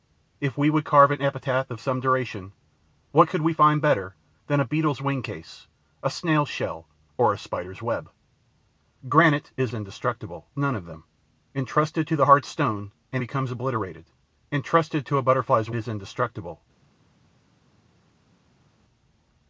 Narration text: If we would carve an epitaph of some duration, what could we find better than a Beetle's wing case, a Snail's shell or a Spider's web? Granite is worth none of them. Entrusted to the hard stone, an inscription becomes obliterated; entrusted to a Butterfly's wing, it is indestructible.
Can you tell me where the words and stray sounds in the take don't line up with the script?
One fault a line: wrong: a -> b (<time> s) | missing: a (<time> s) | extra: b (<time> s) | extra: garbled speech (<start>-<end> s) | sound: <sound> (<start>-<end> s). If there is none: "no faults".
wrong: worth -> indestructible (9.7 s)
missing: inscription (13.2 s)
missing: wing it (15.7 s)